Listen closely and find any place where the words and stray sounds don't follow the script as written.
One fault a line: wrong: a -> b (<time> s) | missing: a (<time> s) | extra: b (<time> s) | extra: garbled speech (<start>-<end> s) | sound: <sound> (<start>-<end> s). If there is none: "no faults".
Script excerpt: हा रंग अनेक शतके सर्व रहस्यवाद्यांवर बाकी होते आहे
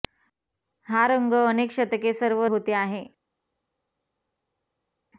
missing: रहस्यवाद्यांवर बाकी (2.4 s)